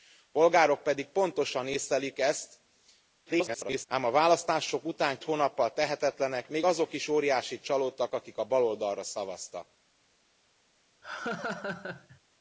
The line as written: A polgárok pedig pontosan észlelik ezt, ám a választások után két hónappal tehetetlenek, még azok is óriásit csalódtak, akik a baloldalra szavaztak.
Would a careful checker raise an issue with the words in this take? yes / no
yes